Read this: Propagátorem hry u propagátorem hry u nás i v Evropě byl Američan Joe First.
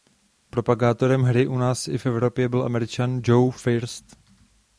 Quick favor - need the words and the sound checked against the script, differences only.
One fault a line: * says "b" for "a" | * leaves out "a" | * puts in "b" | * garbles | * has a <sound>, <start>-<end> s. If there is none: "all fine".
* leaves out "propagátorem hry u"